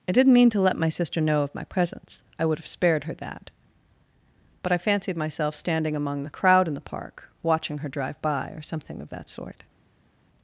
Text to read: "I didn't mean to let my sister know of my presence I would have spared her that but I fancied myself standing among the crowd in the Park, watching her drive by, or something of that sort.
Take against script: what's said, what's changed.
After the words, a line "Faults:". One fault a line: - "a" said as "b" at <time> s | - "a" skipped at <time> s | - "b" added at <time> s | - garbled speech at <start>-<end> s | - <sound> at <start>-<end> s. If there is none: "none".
"I didn't mean to let my sister know of my presence I would have spared her that but I fancied myself standing among the crowd in the Park, watching her drive by, or something of that sort.
Faults:
none